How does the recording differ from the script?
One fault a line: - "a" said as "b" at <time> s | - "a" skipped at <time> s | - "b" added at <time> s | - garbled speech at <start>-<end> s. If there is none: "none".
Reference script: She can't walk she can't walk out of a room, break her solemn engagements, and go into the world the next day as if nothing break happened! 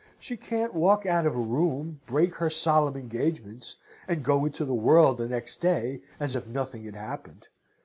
- "she can't walk" skipped at 1.1 s
- "break" said as "had" at 6.8 s